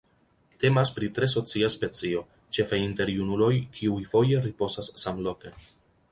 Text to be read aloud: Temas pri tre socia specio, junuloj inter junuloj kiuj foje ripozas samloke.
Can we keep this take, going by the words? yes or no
no